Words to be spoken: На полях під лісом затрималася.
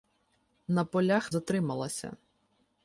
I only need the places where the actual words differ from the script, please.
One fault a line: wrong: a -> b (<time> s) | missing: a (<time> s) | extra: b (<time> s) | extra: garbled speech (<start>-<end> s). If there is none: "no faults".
missing: під лісом (1.3 s)